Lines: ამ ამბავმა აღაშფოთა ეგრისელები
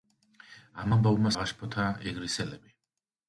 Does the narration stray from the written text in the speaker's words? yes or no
no